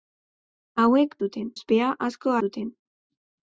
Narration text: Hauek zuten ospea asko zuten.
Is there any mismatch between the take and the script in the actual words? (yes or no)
no